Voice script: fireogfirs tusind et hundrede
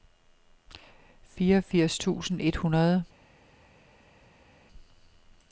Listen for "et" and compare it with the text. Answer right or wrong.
right